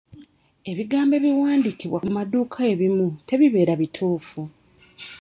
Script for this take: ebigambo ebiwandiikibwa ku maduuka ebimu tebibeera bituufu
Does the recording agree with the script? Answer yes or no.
yes